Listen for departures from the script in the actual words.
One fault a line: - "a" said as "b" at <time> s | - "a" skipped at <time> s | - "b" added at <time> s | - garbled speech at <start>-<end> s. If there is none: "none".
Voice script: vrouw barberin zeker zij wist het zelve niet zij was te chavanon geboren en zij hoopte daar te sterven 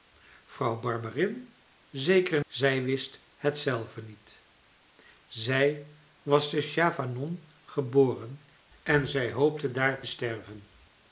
none